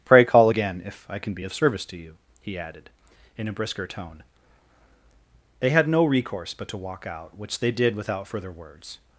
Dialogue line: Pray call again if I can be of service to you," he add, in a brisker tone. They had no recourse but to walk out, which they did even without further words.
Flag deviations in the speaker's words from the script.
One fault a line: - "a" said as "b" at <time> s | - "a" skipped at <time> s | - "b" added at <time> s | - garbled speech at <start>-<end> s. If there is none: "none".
- "add" said as "added" at 2.6 s
- "even" skipped at 7.9 s